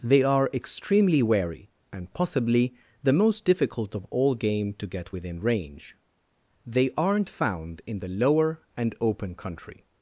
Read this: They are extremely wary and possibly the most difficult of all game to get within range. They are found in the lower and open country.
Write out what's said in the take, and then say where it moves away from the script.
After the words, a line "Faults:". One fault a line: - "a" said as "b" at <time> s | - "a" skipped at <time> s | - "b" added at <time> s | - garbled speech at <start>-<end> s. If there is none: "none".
They are extremely wary and possibly the most difficult of all game to get within range. They aren't found in the lower and open country.
Faults:
- "are" said as "aren't" at 7.0 s